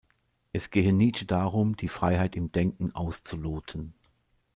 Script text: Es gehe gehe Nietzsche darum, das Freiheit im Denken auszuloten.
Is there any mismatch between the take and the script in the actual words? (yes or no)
yes